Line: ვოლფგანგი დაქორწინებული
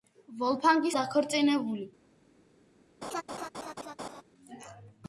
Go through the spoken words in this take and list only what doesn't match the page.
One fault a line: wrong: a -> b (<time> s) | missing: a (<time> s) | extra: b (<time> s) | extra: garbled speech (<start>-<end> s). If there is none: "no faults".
no faults